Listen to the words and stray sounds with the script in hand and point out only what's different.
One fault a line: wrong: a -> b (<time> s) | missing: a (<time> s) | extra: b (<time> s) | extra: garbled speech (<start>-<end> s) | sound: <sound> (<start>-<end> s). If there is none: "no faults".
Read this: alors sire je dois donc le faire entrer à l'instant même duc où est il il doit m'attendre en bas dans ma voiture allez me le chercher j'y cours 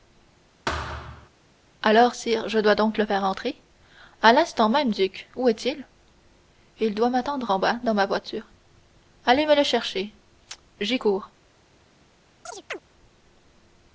sound: thud (0.7-1.3 s)
sound: chirp (12.4-12.8 s)